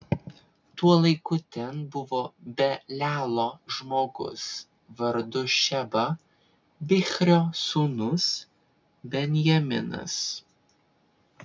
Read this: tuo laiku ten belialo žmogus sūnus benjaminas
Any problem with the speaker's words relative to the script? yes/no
yes